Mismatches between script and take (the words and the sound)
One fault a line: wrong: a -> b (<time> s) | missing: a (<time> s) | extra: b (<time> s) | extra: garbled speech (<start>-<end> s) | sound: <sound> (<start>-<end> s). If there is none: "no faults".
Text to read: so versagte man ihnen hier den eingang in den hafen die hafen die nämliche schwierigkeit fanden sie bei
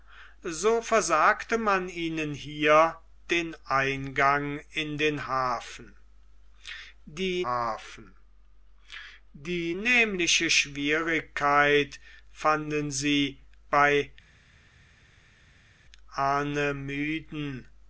no faults